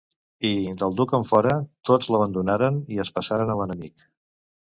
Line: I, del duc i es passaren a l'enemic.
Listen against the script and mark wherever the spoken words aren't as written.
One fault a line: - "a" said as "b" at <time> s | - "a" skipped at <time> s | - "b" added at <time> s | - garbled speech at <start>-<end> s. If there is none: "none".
- "enfora tots l'abandonaren" added at 1.2 s